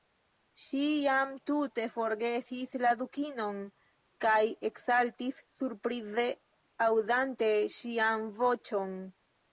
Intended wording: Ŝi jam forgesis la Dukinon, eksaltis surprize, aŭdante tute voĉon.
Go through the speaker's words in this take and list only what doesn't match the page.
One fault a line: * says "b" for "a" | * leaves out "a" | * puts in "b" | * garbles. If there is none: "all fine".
* puts in "tute"
* puts in "kaj"
* says "ŝian" for "tute"